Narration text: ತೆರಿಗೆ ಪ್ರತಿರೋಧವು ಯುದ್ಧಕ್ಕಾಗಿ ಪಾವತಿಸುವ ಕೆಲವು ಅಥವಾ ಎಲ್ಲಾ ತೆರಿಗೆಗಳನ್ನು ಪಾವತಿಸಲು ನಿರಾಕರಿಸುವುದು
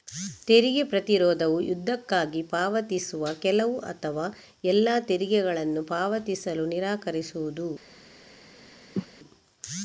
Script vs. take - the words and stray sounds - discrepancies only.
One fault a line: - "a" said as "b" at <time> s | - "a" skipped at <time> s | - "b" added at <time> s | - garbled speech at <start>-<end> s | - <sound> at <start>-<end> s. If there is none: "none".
- cough at 9.0-9.1 s